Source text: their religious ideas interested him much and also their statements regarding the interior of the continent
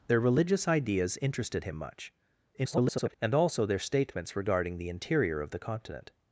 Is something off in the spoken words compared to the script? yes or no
yes